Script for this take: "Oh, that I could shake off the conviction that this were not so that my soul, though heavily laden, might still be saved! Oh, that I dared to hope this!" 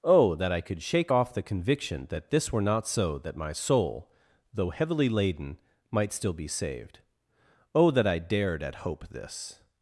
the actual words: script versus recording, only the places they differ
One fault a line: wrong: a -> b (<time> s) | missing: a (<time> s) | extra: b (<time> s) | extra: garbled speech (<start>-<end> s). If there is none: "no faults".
wrong: to -> at (8.6 s)